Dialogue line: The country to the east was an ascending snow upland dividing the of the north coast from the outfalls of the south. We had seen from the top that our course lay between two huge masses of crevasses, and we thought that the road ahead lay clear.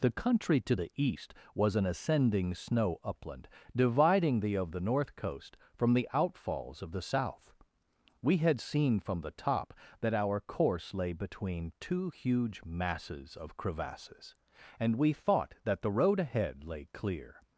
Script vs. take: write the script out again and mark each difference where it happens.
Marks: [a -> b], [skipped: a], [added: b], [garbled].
The country to the east was an ascending snow upland dividing the of the north coast from the outfalls of the south. We had seen from the top that our course lay between two huge masses of crevasses, and we thought that the road ahead lay clear.